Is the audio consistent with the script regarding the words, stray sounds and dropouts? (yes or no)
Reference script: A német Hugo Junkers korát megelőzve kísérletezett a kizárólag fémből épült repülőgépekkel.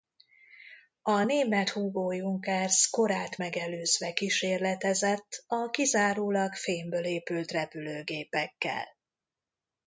yes